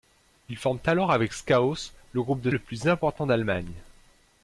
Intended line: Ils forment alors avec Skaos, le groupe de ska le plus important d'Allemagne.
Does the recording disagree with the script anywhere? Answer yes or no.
yes